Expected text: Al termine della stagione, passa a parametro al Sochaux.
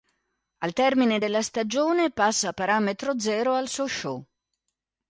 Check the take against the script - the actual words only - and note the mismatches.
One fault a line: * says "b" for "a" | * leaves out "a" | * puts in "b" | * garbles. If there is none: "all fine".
* puts in "zero"